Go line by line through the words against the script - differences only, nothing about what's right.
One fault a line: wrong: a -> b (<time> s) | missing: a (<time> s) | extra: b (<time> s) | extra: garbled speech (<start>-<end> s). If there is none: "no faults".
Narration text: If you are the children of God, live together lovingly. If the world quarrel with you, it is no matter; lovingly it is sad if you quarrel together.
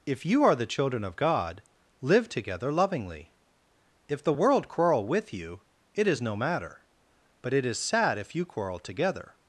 wrong: lovingly -> but (7.4 s)